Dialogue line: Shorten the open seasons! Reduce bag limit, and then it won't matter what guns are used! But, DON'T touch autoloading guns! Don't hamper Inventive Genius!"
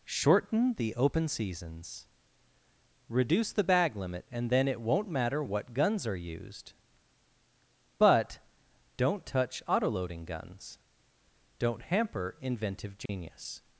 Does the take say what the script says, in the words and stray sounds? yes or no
no